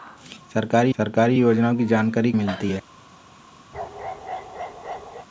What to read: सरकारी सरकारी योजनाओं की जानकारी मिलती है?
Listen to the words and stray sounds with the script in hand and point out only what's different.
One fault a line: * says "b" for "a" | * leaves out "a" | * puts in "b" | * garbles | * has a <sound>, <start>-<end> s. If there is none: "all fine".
* has a bark, 3.7-5.3 s